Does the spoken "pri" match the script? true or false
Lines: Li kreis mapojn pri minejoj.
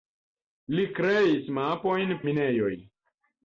false